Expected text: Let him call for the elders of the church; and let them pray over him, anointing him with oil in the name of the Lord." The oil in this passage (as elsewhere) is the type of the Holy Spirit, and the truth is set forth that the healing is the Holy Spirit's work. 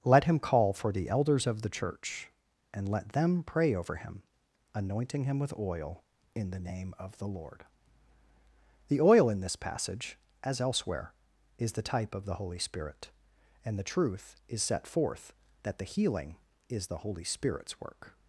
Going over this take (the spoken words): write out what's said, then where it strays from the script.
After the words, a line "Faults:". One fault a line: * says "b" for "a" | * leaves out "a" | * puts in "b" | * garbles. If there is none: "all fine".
Let him call for the elders of the church; and let them pray over him, anointing him with oil in the name of the Lord." The oil in this passage (as elsewhere) is the type of the Holy Spirit, and the truth is set forth that the healing is the Holy Spirit's work.
Faults:
all fine